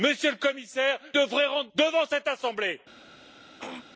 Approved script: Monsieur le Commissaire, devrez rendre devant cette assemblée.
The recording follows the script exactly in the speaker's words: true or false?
true